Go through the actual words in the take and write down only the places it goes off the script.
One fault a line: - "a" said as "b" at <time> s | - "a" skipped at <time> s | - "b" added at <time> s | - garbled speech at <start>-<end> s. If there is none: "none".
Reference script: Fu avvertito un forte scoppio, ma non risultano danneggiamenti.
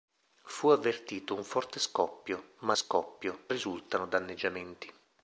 - "non" said as "scoppio" at 2.7 s